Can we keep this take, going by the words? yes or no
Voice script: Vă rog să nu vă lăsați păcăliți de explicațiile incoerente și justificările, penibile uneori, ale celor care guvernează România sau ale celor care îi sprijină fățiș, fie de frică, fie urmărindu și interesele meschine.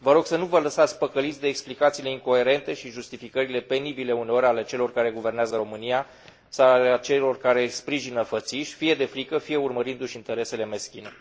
yes